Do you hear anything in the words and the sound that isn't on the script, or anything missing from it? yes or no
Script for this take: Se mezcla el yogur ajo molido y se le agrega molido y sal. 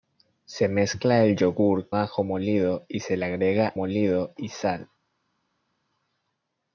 no